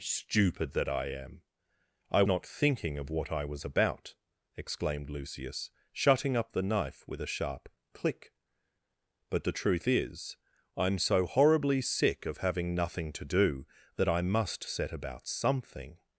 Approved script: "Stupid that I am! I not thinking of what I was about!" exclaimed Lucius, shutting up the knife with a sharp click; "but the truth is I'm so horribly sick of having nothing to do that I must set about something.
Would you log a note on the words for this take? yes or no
no